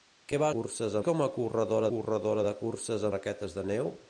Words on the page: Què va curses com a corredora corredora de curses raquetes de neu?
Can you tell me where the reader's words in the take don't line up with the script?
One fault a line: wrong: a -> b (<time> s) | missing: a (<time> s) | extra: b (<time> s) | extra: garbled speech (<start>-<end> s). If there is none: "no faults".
no faults